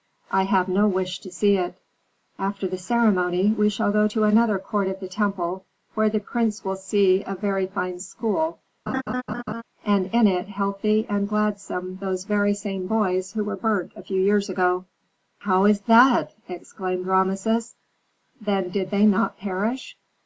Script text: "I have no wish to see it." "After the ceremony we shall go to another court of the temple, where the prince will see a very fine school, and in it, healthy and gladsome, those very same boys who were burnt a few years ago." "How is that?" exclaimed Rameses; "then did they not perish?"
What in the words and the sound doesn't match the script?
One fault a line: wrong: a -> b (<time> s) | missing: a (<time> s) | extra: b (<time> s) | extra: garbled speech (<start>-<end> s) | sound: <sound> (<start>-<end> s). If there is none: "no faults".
sound: laugh (8.9-9.6 s)